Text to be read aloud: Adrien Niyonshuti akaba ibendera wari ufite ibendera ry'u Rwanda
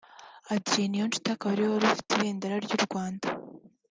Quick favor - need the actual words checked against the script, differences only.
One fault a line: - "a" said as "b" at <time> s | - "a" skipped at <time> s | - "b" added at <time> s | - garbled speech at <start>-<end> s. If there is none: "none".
- "ibendera" said as "ariwe" at 1.5 s